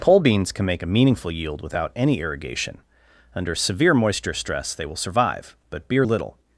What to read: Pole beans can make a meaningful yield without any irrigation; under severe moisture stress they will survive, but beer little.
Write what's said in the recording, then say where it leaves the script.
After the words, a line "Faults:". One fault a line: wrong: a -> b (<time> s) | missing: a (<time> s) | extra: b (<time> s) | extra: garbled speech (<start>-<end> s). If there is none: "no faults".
Pole beans can make a meaningful yield without any irrigation; under severe moisture stress they will survive, but beer little.
Faults:
no faults